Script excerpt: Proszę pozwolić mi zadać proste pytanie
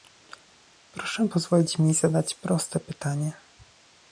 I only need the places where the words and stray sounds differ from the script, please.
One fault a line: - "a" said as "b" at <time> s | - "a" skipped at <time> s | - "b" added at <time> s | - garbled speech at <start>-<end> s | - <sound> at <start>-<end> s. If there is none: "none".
none